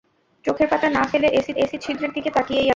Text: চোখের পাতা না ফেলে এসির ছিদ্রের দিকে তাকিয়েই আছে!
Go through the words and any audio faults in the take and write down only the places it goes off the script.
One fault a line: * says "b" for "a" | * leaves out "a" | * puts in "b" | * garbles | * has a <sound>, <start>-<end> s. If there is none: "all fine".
* puts in "এসির"